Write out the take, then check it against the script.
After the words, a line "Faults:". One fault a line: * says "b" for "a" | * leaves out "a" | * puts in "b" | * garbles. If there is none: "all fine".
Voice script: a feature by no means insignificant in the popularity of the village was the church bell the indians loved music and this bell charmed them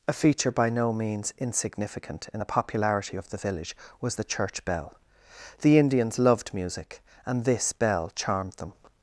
a feature by no means insignificant in the popularity of the village was the church bell the indians loved music and this bell charmed them
Faults:
all fine